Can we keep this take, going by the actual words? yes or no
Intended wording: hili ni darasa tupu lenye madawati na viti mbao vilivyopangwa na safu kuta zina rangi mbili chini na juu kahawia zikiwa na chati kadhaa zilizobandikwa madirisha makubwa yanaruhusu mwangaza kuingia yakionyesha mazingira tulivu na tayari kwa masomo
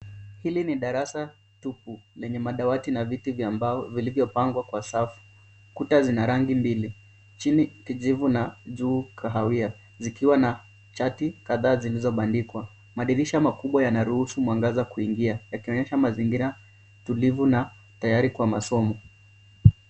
no